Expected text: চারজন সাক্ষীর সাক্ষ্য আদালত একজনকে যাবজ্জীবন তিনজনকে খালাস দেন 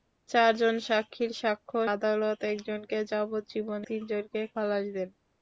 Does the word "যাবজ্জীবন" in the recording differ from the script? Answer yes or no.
no